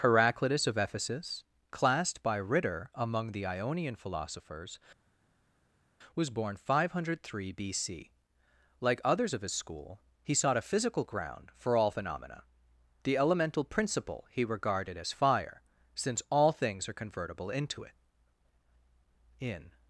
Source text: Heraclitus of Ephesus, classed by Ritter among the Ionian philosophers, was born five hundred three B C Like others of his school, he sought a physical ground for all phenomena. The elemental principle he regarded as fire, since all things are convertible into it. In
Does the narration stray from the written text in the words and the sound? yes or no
no